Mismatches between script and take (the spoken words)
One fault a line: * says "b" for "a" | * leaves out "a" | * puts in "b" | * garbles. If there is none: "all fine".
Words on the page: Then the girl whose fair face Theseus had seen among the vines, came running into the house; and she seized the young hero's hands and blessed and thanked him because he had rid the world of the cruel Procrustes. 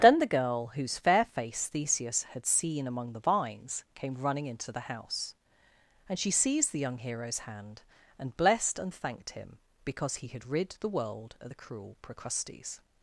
* says "hand" for "hands"